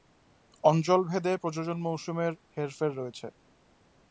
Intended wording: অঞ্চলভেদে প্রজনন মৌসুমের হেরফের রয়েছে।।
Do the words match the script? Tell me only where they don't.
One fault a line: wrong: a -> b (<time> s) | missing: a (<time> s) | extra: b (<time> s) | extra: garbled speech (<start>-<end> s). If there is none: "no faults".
no faults